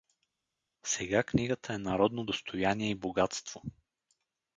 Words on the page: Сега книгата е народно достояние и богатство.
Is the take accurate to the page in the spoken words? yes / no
yes